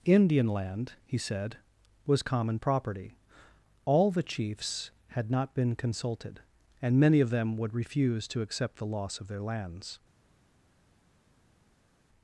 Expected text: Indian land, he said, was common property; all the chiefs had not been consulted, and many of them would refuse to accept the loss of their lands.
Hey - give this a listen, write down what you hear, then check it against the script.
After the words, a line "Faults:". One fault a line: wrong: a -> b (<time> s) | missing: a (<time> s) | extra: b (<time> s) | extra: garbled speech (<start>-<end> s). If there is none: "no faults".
Indian land, he said, was common property; all the chiefs had not been consulted, and many of them would refuse to accept the loss of their lands.
Faults:
no faults